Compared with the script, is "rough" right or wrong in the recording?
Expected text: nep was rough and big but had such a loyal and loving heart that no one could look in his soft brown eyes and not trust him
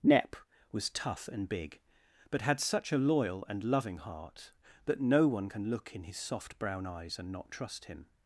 wrong